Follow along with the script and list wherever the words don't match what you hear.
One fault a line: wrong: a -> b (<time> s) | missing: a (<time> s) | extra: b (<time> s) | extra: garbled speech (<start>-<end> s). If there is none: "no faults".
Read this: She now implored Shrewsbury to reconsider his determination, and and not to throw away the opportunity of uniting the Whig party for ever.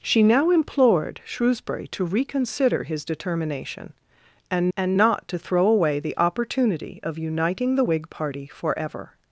no faults